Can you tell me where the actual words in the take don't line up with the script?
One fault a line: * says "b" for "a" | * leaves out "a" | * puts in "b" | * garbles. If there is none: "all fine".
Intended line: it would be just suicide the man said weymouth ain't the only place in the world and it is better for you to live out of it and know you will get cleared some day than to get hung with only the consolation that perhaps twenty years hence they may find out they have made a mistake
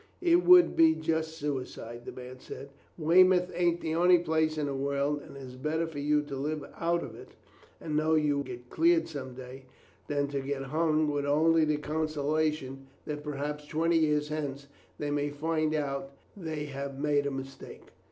* leaves out "will"